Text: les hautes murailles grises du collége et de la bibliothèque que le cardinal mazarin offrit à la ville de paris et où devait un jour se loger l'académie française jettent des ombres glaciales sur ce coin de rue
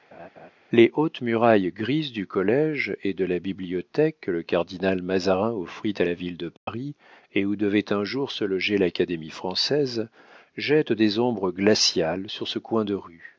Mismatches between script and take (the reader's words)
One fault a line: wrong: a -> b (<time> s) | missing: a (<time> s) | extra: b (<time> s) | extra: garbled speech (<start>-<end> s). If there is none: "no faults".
no faults